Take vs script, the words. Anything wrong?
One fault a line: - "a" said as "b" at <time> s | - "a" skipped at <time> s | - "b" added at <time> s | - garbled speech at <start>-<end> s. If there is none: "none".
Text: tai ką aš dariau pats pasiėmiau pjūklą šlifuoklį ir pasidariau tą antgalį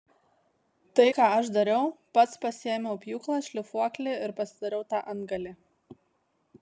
none